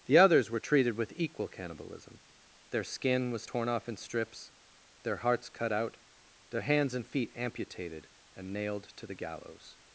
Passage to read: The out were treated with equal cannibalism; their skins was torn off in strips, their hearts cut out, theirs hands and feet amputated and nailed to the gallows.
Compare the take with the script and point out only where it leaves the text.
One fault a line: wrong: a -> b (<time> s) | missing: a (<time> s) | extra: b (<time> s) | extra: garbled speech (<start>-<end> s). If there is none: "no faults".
wrong: out -> others (0.2 s)
wrong: skins -> skin (2.8 s)
wrong: theirs -> their (6.5 s)